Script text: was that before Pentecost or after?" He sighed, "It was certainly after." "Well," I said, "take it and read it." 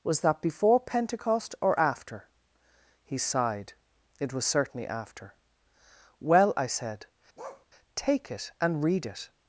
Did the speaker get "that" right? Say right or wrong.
right